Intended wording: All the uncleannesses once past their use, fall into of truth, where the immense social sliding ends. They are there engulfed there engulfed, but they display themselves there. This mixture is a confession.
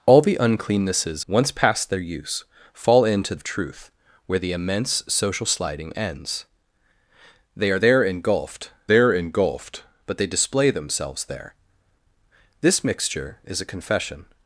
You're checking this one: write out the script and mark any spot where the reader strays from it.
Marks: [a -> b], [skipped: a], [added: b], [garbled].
All the uncleannesses once past their use, fall into of truth, where the immense social sliding ends. They are there engulfed there engulfed, but they display themselves there. This mixture is a confession.